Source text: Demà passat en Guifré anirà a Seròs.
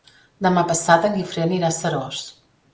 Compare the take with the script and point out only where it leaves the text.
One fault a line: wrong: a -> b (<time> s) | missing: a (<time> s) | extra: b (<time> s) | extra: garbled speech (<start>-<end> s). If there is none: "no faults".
no faults